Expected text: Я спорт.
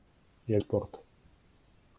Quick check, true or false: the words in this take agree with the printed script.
true